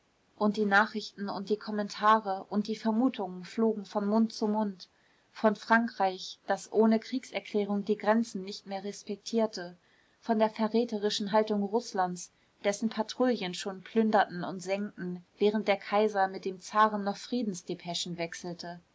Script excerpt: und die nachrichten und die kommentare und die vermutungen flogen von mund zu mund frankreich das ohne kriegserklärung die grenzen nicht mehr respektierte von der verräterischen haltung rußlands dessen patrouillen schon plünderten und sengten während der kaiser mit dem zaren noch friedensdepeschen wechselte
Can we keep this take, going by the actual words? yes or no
no